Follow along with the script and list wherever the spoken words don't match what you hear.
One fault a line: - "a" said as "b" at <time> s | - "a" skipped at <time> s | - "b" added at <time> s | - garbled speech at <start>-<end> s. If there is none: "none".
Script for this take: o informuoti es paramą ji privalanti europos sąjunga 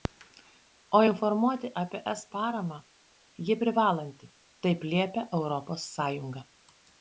- "apie" added at 1.8 s
- "taip liepia" added at 4.7 s